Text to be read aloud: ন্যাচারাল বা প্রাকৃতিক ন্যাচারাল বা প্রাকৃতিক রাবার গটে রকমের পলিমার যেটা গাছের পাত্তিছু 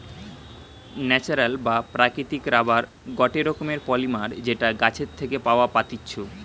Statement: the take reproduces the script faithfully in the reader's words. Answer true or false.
false